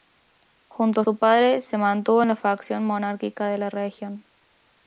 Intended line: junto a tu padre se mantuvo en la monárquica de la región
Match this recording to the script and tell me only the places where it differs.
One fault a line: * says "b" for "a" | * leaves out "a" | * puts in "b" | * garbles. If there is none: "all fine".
* says "su" for "tu"
* puts in "facción"